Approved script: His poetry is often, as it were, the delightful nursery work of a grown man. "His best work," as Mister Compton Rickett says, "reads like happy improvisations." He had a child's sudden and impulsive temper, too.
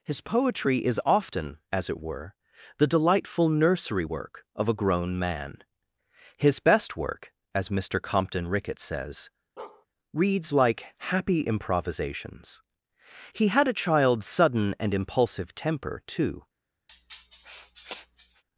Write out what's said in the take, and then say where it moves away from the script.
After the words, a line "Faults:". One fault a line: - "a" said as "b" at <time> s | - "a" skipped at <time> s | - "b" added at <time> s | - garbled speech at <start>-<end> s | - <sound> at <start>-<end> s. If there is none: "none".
His poetry is often, as it were, the delightful nursery work of a grown man. "His best work," as Mister Compton Rickett says, "reads like happy improvisations." He had a child's sudden and impulsive temper, too.
Faults:
- bark at 9.6-9.9 s
- sniff at 16.9-18.4 s